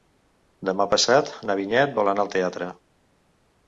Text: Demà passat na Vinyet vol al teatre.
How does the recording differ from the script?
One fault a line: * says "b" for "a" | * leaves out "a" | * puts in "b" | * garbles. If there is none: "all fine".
* puts in "anar"